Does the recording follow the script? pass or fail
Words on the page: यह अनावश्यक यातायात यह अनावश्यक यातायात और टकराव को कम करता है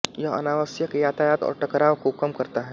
fail